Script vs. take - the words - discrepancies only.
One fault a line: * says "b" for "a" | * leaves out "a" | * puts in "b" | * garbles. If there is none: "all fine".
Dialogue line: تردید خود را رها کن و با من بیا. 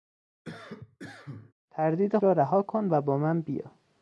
* leaves out "خود"